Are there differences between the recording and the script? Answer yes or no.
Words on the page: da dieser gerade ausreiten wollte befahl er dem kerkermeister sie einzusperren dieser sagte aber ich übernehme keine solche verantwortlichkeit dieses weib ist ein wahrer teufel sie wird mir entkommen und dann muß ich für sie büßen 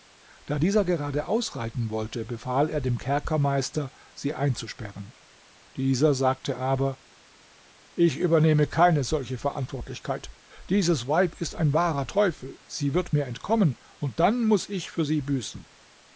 no